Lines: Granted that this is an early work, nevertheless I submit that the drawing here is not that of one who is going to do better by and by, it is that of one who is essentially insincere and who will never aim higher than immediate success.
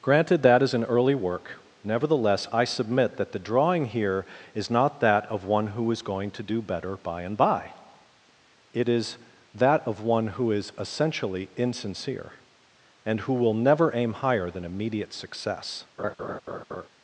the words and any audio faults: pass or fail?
fail